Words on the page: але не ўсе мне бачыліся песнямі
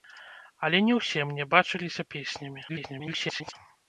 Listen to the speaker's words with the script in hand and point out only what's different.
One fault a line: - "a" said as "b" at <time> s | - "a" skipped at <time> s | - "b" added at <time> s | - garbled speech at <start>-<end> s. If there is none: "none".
- garbled speech at 2.7-3.5 s